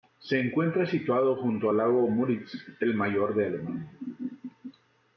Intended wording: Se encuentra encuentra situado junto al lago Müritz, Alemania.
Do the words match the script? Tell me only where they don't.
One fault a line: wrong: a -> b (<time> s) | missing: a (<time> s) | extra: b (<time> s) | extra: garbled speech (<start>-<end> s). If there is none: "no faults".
missing: encuentra (0.9 s)
extra: el mayor de (2.8 s)